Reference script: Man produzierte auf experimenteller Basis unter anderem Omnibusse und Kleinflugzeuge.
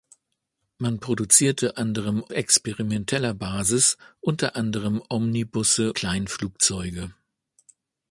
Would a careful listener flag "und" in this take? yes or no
yes